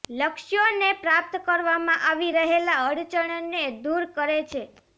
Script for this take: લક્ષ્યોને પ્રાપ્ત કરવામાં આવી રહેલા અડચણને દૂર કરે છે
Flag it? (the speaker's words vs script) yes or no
no